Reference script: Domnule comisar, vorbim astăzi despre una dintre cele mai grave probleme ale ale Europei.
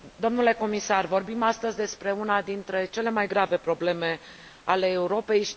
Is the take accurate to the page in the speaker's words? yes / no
no